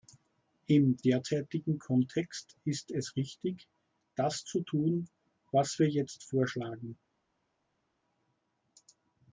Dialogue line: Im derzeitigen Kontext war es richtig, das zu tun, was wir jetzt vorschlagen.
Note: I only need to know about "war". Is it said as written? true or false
false